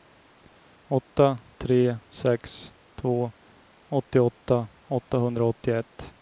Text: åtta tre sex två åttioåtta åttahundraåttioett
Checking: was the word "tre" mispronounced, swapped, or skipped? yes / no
no